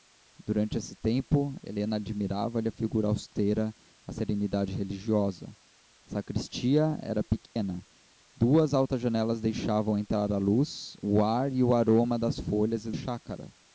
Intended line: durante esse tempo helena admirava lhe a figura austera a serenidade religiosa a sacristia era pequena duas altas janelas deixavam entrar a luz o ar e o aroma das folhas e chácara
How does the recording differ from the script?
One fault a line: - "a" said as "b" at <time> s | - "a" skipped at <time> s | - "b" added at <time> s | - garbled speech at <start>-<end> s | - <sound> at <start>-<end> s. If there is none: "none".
- dropout at 7.5-7.6 s